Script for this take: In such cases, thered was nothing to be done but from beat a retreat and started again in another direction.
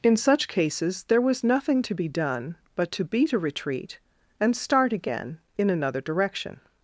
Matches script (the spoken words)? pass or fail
fail